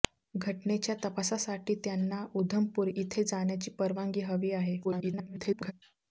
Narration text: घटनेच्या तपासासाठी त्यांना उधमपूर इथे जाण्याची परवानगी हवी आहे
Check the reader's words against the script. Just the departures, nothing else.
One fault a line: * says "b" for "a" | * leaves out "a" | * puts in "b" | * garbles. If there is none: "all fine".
* garbles